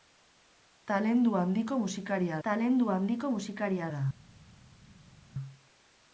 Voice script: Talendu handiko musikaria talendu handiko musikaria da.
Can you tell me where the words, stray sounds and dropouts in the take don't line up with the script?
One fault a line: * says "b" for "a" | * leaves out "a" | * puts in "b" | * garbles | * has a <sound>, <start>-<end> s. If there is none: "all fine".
all fine